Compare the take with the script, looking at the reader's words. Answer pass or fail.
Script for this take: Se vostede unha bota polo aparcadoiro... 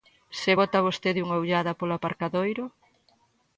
fail